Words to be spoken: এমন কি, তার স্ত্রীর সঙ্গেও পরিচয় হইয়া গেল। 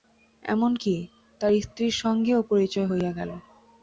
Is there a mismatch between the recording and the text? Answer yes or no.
no